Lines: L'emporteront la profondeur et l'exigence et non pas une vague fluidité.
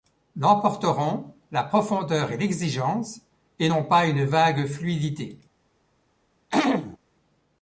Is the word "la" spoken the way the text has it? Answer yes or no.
yes